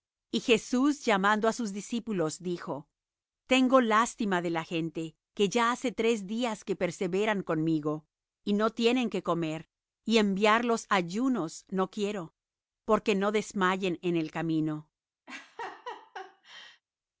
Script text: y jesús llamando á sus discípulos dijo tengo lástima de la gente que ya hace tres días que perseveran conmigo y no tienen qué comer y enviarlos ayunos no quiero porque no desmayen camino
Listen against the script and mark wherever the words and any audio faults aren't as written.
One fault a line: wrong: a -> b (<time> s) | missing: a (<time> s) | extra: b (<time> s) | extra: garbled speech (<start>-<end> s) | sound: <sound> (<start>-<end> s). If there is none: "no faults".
extra: en el (14.0 s)
sound: laugh (15.3-16.8 s)